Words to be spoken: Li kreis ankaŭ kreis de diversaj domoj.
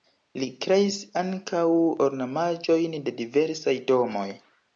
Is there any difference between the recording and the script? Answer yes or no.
yes